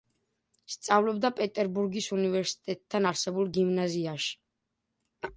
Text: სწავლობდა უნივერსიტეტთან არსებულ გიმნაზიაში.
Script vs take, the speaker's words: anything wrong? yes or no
yes